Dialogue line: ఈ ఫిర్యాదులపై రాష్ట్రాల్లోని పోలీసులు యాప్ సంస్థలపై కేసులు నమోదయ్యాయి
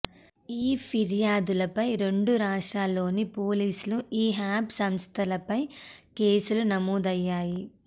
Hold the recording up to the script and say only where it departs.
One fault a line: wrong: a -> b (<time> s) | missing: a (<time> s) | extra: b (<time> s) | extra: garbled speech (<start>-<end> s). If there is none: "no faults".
extra: రెండు (2.0 s)
extra: ఈ (4.1 s)